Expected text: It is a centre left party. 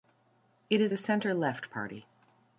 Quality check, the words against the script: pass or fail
pass